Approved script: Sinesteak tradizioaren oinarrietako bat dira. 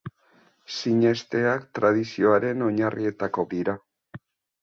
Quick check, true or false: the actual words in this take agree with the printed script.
false